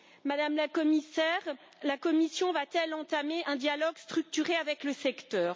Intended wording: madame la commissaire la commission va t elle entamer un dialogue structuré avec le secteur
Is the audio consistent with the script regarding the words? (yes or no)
yes